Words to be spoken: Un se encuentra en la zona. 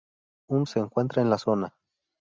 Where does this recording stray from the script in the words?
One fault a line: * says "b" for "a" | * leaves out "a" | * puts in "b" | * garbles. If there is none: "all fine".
all fine